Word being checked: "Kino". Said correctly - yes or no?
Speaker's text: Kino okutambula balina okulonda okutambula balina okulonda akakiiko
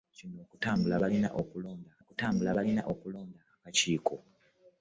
yes